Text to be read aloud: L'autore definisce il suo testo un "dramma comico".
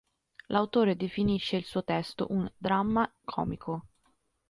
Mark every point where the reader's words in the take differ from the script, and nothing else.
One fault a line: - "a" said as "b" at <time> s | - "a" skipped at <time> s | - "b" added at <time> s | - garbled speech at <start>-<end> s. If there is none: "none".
none